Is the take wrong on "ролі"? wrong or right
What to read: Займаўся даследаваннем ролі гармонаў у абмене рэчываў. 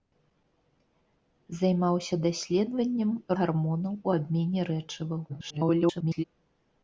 wrong